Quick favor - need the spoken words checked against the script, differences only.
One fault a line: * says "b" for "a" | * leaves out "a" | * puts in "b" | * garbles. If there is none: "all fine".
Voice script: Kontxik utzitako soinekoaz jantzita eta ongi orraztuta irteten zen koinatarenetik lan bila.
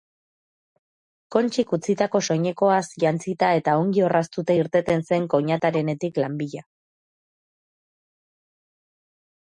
all fine